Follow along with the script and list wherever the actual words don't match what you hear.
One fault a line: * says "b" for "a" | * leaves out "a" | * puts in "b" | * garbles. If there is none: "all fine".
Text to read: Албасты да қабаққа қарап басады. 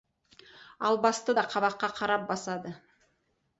all fine